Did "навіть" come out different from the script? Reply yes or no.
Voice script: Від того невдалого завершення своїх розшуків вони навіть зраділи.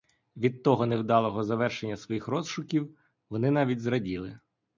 no